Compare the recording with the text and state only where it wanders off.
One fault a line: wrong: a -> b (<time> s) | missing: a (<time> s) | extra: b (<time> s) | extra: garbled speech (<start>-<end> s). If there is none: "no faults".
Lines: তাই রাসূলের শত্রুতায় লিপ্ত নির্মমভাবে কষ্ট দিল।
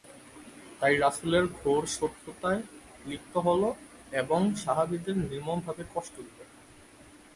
extra: ঘোর (1.6 s)
extra: হল এবং সাহাবীদের (3.4 s)